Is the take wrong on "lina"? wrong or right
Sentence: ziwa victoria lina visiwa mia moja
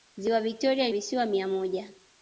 wrong